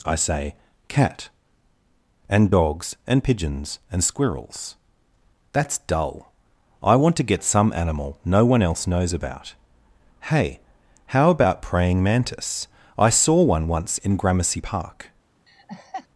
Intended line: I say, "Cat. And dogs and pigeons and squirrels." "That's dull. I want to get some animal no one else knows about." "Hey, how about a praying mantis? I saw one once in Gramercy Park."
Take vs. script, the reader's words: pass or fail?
fail